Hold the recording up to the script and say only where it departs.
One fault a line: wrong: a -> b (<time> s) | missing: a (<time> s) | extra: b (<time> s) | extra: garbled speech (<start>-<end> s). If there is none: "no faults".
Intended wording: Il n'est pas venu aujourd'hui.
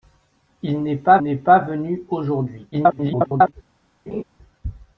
extra: n'est pas (1.2 s)
extra: garbled speech (2.7-3.5 s)